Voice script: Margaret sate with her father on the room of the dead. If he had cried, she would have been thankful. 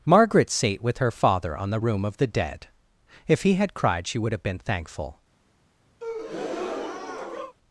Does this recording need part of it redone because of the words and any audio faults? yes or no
yes